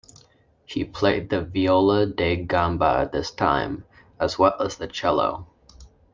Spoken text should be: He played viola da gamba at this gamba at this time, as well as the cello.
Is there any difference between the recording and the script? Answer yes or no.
yes